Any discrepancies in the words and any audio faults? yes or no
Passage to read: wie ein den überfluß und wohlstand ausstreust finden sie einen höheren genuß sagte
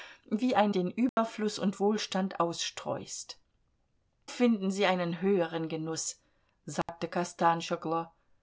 yes